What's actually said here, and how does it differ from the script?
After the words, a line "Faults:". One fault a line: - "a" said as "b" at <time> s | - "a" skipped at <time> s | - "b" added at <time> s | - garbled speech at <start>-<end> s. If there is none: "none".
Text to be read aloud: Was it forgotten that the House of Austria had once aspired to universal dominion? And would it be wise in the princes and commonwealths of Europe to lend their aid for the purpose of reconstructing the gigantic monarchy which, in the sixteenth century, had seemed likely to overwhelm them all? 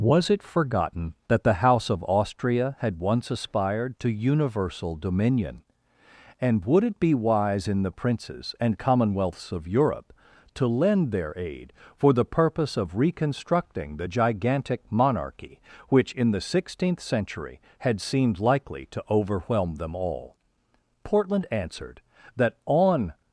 Was it forgotten that the House of Austria had once aspired to universal dominion? And would it be wise in the princes and commonwealths of Europe to lend their aid for the purpose of reconstructing the gigantic monarchy which, in the sixteenth century, had seemed likely to overwhelm them all? Portland answered that, on
Faults:
- "Portland answered that on" added at 21.0 s